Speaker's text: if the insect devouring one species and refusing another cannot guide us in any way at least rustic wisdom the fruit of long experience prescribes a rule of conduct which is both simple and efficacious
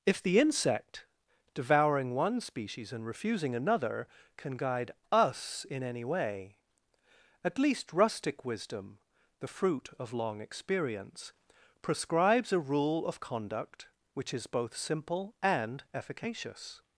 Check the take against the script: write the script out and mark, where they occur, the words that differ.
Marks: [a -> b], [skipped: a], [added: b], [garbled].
if the insect devouring one species and refusing another [cannot -> can] guide us in any way at least rustic wisdom the fruit of long experience prescribes a rule of conduct which is both simple and efficacious